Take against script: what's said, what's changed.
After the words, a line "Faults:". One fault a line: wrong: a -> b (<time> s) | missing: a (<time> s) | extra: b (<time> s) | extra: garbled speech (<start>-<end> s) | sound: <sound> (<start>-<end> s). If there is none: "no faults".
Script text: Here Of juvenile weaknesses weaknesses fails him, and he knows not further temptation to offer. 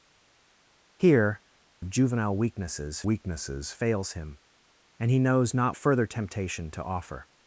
Here Of juvenile weaknesses weaknesses fails him, and he knows not further temptation to offer.
Faults:
no faults